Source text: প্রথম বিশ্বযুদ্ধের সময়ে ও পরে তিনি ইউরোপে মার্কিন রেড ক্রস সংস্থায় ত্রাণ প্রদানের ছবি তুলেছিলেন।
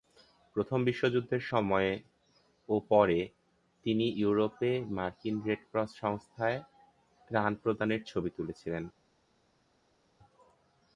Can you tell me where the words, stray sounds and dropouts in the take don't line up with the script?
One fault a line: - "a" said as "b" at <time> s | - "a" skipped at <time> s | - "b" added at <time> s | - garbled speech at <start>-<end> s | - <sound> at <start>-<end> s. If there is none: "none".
none